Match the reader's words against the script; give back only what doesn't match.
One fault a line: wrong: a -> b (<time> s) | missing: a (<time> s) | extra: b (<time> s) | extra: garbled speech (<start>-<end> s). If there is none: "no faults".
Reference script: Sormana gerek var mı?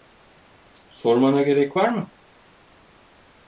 no faults